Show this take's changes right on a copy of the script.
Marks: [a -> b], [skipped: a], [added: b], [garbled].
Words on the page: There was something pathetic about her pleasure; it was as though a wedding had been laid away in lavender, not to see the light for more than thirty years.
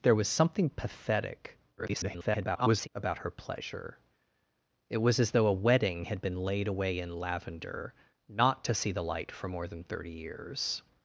There was something pathetic [garbled] about her pleasure; it was as though a wedding had been laid away in lavender, not to see the light for more than thirty years.